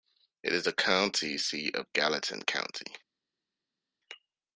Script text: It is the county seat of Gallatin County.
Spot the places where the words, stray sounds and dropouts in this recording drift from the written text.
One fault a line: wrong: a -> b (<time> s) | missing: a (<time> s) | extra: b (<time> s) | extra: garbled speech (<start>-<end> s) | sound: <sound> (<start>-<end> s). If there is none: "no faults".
no faults